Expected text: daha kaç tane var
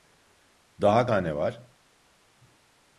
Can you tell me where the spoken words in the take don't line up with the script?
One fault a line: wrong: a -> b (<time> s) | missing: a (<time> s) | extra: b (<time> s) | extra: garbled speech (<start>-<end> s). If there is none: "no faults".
missing: kaç (1.1 s)